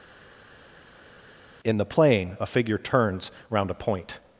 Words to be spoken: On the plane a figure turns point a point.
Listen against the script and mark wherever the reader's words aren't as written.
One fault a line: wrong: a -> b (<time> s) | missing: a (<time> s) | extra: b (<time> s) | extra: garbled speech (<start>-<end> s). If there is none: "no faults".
wrong: On -> In (1.6 s)
wrong: point -> round (3.5 s)